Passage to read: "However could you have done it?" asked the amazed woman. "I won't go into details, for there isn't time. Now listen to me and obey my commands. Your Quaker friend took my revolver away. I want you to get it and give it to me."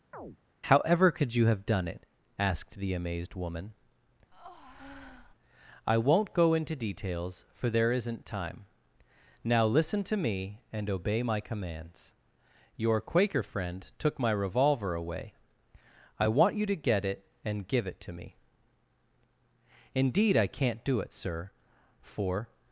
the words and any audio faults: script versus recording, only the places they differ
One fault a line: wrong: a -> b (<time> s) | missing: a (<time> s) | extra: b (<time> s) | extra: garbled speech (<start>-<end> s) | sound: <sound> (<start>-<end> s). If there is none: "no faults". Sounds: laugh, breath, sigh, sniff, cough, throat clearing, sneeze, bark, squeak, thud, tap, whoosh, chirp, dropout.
sound: chirp (0.1-0.4 s)
sound: breath (4.3-5.4 s)
extra: Indeed I can't do it sir for (19.9 s)